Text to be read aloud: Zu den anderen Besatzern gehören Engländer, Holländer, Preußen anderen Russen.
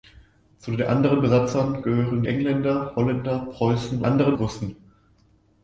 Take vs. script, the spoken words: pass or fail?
pass